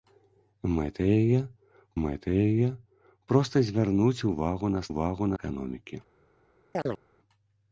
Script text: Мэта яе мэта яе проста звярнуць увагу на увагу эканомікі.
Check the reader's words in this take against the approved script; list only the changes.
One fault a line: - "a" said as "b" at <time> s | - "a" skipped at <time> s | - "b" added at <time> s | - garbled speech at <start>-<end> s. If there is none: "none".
none